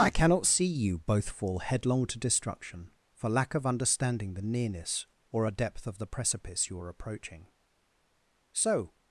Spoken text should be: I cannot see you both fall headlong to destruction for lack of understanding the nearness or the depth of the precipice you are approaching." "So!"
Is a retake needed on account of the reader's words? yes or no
yes